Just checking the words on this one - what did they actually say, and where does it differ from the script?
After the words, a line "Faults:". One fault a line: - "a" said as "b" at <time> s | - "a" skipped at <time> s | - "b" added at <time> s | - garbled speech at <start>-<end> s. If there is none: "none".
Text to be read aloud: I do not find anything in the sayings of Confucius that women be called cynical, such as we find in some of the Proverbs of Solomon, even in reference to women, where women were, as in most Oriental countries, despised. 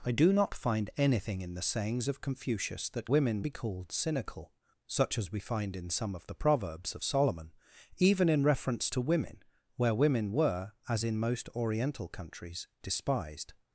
I do not find anything in the sayings of Confucius that women be called cynical, such as we find in some of the Proverbs of Solomon, even in reference to women, where women were, as in most Oriental countries, despised.
Faults:
none